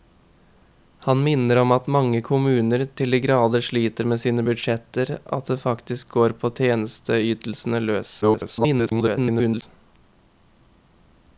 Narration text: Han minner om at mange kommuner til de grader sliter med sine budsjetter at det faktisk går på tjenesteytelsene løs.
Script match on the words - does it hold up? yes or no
no